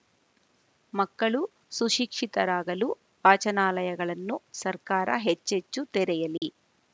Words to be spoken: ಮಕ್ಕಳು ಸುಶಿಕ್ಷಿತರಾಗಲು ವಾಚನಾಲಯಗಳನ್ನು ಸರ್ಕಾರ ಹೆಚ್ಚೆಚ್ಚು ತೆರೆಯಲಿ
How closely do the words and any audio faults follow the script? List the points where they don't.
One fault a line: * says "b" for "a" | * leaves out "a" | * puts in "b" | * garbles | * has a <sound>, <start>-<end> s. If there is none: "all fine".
* has a dropout, 6.4-6.4 s